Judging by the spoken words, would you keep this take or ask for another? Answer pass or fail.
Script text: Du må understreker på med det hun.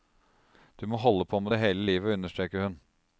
fail